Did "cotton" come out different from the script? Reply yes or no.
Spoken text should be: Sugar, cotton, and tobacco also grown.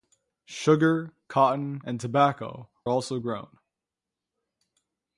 no